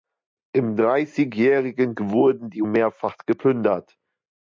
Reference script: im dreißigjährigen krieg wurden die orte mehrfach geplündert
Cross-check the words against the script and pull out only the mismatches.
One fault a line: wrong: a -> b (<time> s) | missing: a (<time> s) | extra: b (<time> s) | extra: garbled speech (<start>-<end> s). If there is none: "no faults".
missing: krieg (1.9 s)
missing: orte (2.6 s)